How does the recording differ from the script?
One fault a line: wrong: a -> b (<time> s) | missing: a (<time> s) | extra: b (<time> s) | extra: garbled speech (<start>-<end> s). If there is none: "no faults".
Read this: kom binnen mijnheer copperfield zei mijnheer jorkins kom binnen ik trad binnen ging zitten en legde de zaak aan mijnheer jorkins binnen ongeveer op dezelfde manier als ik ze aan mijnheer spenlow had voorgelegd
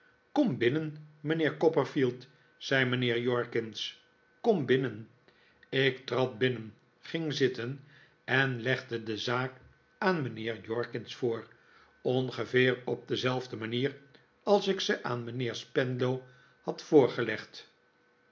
wrong: binnen -> voor (11.2 s)